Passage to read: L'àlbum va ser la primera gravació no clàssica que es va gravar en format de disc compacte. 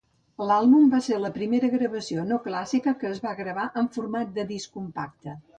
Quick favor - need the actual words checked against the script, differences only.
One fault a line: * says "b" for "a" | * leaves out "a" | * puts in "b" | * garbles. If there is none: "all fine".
all fine